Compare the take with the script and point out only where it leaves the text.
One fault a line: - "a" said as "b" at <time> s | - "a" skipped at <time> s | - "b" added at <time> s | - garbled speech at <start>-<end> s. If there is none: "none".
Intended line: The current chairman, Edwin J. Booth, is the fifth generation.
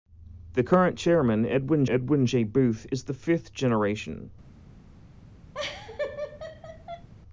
- "Edwin" added at 1.8 s